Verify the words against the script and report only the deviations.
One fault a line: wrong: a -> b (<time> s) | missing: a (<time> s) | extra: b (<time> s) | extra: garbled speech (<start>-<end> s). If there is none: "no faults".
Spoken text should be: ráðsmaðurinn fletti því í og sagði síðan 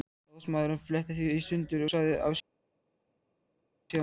extra: sundur (1.5 s)